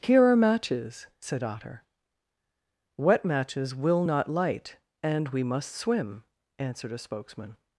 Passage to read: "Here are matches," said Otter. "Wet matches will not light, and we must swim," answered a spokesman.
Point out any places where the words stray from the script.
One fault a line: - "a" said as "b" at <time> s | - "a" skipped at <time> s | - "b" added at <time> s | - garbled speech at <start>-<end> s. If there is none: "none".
none